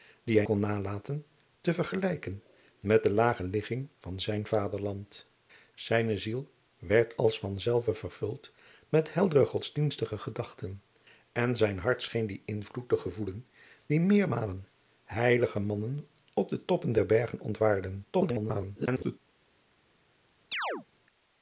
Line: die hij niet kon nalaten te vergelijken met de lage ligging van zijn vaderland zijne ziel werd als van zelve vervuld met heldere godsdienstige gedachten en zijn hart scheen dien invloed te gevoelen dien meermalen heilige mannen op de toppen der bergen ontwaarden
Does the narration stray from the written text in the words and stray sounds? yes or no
yes